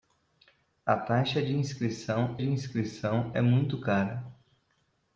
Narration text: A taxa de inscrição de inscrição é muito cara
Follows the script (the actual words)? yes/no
yes